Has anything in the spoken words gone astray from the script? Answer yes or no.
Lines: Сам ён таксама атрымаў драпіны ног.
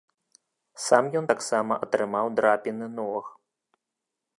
no